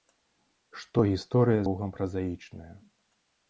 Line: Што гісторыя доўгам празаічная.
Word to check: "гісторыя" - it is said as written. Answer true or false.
true